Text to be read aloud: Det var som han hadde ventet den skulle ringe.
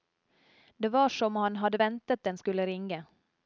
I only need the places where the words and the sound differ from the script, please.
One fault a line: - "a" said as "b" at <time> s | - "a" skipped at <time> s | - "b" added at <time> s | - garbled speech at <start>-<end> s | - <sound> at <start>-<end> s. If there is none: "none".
none